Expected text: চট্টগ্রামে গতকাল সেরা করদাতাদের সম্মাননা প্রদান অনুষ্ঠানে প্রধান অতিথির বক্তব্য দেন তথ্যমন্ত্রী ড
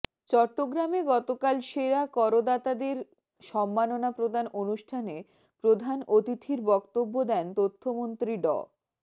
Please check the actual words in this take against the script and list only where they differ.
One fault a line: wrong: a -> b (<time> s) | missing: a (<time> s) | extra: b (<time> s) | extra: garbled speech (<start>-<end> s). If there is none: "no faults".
no faults